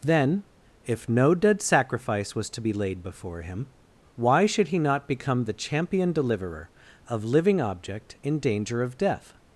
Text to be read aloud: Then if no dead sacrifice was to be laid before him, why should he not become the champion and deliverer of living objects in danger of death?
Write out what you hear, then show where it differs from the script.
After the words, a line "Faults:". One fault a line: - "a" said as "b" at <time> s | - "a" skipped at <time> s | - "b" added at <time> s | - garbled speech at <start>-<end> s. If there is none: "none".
Then if no dead sacrifice was to be laid before him, why should he not become the champion deliverer of living object in danger of death?
Faults:
- "and" skipped at 6.1 s
- "objects" said as "object" at 7.6 s